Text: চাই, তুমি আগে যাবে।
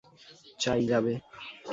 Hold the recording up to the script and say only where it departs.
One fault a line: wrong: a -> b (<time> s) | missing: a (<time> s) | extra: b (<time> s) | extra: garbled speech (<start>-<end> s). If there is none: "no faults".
missing: তুমি আগে (0.8 s)